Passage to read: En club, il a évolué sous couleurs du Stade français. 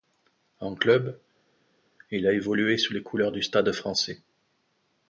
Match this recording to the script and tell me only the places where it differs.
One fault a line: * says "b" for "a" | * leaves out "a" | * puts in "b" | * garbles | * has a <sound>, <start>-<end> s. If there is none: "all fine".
* puts in "les"